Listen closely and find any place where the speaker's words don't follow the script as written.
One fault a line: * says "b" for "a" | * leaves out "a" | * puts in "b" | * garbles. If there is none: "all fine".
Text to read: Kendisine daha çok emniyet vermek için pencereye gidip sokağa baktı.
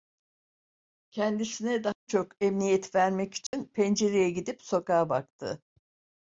all fine